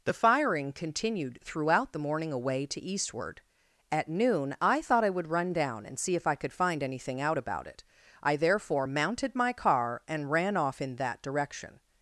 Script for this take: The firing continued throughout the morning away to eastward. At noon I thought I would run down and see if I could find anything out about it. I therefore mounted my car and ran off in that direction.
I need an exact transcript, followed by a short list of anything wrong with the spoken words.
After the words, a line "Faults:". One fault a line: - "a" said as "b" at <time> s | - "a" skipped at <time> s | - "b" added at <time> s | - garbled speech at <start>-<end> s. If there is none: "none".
The firing continued throughout the morning away to eastward. At noon I thought I would run down and see if I could find anything out about it. I therefore mounted my car and ran off in that direction.
Faults:
none